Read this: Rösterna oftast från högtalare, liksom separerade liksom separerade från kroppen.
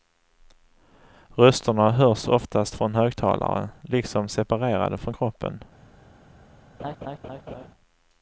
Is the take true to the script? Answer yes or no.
no